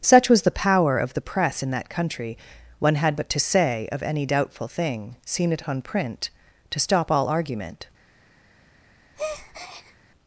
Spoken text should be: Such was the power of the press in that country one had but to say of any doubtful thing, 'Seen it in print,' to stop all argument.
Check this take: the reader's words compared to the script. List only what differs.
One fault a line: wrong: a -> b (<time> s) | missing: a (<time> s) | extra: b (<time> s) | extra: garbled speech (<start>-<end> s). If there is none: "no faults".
wrong: in -> on (5.7 s)